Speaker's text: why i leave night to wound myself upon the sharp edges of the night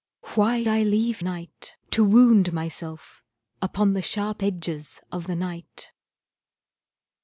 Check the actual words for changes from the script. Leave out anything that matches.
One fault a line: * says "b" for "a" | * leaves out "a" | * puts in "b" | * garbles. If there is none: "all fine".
all fine